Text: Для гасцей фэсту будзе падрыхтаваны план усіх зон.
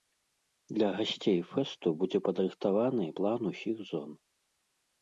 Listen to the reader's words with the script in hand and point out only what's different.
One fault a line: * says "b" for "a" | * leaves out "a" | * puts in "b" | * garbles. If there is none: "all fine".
all fine